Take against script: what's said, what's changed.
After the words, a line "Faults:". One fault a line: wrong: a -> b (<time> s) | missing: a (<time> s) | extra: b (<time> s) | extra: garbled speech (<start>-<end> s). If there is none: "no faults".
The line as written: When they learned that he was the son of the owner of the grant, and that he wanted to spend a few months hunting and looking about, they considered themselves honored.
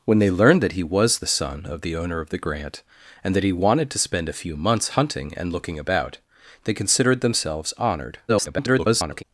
When they learned that he was the son of the owner of the grant, and that he wanted to spend a few months hunting and looking about, they considered themselves honored. [garbled]
Faults:
extra: garbled speech (8.3-9.2 s)